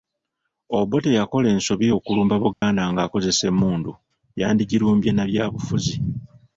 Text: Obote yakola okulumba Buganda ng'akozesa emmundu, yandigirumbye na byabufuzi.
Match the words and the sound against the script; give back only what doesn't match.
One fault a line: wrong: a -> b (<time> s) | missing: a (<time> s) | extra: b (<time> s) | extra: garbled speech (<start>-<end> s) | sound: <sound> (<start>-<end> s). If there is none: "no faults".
extra: ensobi (1.6 s)
sound: dropout (2.5-2.6 s)